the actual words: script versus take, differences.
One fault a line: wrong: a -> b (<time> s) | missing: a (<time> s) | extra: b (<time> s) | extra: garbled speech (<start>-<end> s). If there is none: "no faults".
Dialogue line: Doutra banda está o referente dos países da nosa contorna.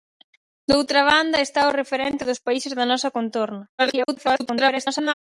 extra: garbled speech (3.8-5.1 s)